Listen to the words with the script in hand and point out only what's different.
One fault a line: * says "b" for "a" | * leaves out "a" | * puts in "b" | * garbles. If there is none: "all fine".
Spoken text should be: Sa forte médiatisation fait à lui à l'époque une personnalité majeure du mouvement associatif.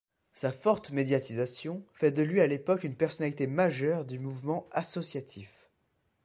* says "de" for "à"